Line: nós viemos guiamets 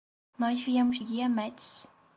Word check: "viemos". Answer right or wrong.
right